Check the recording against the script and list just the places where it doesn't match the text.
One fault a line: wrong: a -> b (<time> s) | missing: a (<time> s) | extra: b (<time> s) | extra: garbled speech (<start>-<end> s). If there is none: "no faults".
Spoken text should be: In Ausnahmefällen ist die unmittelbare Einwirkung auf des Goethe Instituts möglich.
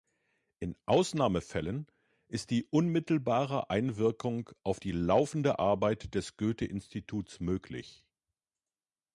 extra: die laufende Arbeit (4.8 s)